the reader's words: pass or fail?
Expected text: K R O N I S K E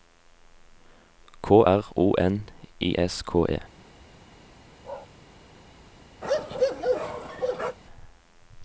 pass